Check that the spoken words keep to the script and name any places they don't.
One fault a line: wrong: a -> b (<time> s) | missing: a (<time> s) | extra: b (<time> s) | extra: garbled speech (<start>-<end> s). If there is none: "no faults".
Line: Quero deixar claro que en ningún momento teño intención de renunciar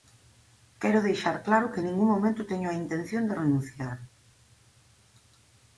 extra: a (2.7 s)